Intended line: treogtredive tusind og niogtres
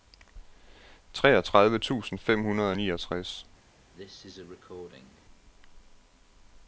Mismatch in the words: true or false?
true